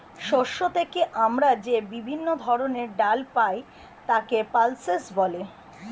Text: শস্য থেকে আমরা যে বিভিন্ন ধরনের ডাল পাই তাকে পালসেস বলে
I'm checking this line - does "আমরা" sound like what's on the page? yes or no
yes